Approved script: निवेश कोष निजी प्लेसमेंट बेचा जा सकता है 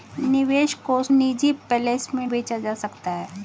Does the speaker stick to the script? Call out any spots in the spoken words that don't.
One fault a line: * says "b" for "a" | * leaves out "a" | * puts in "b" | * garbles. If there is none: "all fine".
all fine